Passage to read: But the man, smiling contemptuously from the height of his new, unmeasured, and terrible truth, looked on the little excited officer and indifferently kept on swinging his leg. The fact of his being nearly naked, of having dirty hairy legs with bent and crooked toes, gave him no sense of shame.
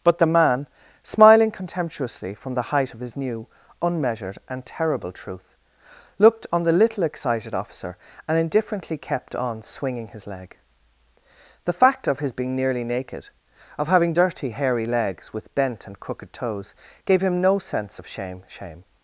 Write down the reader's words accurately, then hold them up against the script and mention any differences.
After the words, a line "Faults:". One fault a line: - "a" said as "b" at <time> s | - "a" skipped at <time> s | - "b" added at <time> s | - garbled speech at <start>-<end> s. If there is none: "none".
But the man, smiling contemptuously from the height of his new, unmeasured, and terrible truth, looked on the little excited officer and indifferently kept on swinging his leg. The fact of his being nearly naked, of having dirty hairy legs with bent and crooked toes, gave him no sense of shame shame.
Faults:
- "shame" added at 18.5 s